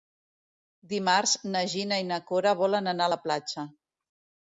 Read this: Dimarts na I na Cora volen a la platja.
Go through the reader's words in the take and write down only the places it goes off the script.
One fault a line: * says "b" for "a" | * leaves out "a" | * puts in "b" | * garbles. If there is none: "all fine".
* puts in "Gina"
* puts in "anar"